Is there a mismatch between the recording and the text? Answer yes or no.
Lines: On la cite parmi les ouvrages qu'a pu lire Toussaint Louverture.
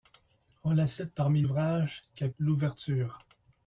yes